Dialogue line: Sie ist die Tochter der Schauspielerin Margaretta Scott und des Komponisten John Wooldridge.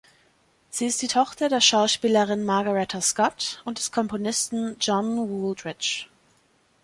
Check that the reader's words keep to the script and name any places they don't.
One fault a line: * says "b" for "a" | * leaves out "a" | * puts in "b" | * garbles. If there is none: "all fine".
all fine